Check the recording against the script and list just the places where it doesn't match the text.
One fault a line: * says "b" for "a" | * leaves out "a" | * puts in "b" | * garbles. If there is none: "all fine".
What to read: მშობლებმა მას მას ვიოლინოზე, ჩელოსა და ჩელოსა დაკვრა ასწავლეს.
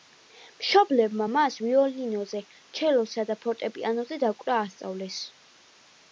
* leaves out "მას"
* says "ფორტეპიანოზე" for "ჩელოსა"